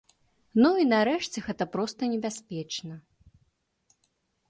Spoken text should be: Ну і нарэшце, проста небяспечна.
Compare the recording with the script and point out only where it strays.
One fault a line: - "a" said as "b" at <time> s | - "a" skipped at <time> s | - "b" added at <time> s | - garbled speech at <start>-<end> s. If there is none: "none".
- "гэта" added at 1.5 s